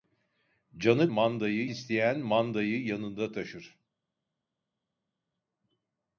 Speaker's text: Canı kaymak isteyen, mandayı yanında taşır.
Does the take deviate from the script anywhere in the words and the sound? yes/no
yes